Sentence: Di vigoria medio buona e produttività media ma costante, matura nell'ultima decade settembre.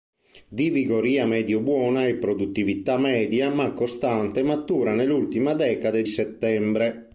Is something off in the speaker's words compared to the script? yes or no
no